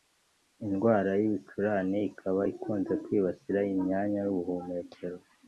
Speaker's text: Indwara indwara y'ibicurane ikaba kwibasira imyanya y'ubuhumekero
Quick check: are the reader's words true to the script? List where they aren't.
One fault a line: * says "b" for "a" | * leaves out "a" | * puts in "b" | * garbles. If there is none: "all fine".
* leaves out "indwara"
* puts in "ikunze"